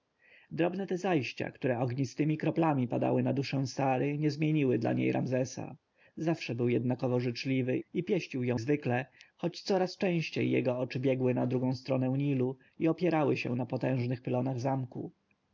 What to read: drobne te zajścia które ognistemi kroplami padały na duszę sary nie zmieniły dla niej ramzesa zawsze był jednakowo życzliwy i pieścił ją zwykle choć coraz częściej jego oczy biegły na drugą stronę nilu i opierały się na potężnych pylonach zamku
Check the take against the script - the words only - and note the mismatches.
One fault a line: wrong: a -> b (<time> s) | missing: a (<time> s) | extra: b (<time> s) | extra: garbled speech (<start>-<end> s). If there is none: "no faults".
no faults